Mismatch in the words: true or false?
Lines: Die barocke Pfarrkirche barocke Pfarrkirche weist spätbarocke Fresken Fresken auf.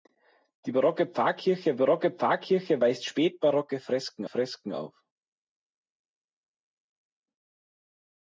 false